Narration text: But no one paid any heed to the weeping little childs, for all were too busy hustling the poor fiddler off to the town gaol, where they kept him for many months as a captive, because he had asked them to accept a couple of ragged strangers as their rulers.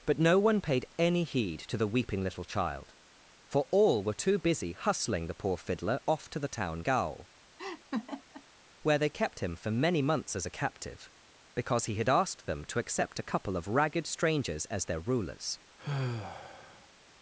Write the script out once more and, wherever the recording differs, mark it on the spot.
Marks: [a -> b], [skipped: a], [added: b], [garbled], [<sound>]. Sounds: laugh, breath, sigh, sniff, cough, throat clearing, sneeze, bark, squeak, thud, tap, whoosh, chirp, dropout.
But no one paid any heed to the weeping little [childs, -> child] for all were too busy hustling the poor fiddler off to the town gaol, [laugh] where they kept him for many months as a captive, because he had asked them to accept a couple of ragged strangers as their rulers. [sigh]